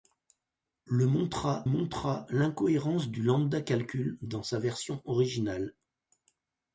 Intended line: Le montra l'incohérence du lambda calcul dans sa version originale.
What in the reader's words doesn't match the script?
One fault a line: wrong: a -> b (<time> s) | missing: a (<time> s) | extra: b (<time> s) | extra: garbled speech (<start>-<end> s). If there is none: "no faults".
extra: montra (1.6 s)